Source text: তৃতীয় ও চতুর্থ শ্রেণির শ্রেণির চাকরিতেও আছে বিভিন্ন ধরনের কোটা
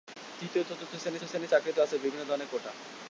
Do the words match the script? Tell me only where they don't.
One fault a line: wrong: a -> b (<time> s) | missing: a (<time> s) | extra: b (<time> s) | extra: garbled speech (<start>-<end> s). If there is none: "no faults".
no faults